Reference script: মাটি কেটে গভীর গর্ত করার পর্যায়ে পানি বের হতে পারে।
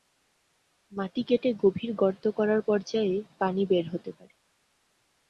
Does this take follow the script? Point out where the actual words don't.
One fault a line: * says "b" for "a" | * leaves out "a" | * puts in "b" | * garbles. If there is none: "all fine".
all fine